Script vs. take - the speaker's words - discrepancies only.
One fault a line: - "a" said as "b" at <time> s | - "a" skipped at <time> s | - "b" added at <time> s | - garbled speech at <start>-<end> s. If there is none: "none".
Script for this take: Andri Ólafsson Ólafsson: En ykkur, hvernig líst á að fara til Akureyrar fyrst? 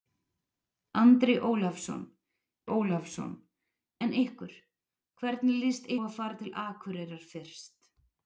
none